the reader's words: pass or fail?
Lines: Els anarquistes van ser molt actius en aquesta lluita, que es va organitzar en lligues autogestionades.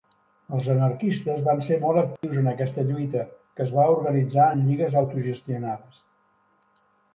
pass